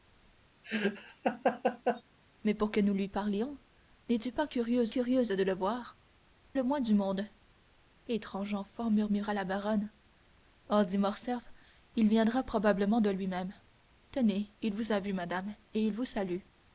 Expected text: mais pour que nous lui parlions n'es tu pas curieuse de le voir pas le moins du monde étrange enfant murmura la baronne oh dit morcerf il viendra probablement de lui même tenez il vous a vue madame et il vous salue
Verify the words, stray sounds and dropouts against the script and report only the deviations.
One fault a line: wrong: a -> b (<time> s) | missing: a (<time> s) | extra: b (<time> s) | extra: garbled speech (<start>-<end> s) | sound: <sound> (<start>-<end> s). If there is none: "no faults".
sound: laugh (0.6-2.0 s)
extra: curieuse (4.9 s)
missing: pas (6.0 s)